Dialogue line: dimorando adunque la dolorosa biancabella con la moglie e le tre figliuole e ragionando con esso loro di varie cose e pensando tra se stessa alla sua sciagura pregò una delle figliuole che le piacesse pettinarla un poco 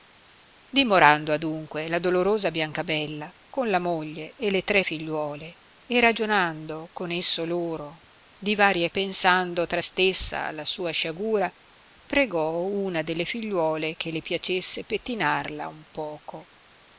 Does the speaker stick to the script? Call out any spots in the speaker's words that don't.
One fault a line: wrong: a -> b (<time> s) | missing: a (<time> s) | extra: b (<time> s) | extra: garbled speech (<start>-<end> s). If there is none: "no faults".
missing: cose e (8.9 s)
missing: se (9.8 s)